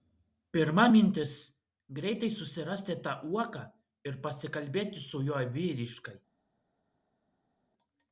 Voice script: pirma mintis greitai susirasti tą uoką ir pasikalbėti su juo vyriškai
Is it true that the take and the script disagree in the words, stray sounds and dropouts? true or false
false